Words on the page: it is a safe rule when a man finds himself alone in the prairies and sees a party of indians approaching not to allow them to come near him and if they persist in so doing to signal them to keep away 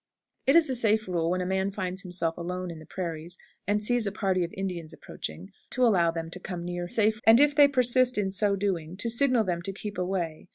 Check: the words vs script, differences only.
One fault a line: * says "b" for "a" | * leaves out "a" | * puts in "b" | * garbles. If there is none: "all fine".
* leaves out "not"
* says "safe" for "him"